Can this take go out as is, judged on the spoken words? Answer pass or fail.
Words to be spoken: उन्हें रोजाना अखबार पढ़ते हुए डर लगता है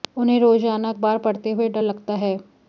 pass